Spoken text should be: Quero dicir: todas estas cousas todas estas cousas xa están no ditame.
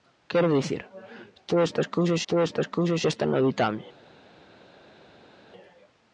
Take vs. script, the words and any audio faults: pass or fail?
pass